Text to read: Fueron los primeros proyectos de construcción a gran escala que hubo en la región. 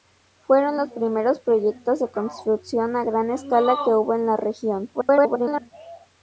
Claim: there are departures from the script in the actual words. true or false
true